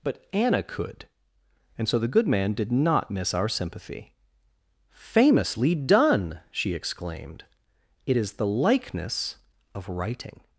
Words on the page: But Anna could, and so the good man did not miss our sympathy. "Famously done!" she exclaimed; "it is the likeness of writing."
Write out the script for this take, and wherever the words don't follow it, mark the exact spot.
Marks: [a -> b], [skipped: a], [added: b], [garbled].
But Anna could, and so the good man did not miss our sympathy. "Famously done!" she exclaimed; "it is the likeness of writing."